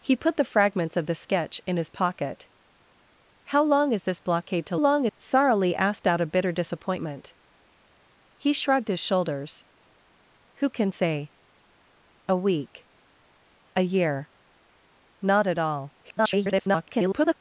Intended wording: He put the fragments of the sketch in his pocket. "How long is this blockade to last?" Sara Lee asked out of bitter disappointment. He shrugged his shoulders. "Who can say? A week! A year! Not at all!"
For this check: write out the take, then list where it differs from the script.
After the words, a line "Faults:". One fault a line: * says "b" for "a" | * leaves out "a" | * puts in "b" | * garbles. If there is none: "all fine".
He put the fragments of the sketch in his pocket. "How long is this blockade to long?" Sara Lee asked out of bitter disappointment. He shrugged his shoulders. "Who can say? A week! A year! Not at all!" [garbled]
Faults:
* says "long" for "last"
* garbles